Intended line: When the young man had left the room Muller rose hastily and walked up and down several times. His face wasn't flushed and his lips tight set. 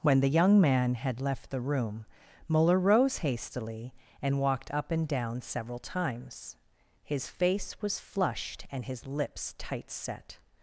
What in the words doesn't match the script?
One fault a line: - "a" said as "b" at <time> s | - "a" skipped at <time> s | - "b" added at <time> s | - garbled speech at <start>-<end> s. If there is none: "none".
- "wasn't" said as "was" at 7.8 s